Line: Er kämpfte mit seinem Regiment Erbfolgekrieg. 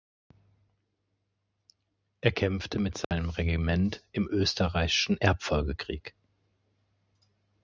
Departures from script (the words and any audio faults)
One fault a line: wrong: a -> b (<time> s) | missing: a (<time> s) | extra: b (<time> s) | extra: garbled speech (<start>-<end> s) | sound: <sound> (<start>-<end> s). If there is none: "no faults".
sound: dropout (3.0-3.1 s)
extra: im österreichischen (4.1 s)